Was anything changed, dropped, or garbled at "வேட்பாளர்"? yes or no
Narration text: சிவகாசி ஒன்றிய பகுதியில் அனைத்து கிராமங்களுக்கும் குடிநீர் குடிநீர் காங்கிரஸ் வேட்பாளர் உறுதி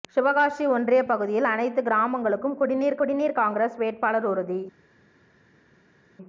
no